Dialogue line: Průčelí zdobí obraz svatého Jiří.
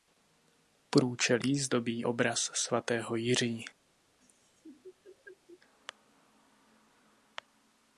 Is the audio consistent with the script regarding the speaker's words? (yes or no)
yes